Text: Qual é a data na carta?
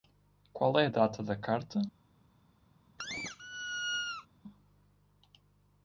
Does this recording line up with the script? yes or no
no